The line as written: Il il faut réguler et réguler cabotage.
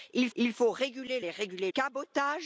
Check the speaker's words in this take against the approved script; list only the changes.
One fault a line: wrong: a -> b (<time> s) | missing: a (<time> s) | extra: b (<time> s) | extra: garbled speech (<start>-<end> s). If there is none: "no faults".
no faults